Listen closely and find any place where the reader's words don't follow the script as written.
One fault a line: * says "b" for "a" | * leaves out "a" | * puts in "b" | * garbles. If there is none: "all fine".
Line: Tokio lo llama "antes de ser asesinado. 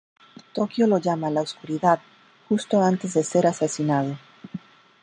* puts in "la oscuridad justo"